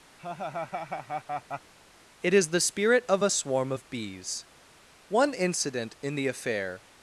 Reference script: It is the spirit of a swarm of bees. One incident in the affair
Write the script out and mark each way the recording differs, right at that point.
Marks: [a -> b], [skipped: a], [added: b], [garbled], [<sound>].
[laugh] It is the spirit of a swarm of bees. One incident in the affair